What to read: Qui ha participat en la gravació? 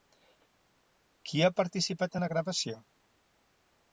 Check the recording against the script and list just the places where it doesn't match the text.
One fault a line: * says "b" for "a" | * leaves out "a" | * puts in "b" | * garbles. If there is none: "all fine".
all fine